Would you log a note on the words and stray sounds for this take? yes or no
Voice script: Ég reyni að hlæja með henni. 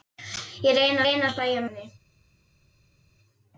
yes